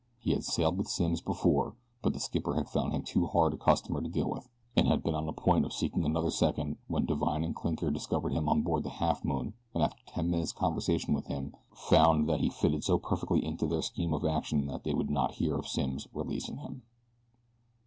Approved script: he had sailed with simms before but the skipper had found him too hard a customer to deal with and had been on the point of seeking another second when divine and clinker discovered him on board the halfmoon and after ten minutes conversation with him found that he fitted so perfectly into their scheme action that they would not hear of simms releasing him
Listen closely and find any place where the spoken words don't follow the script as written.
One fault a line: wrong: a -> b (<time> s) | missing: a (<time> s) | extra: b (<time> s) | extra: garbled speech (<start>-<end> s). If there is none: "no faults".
extra: of (14.1 s)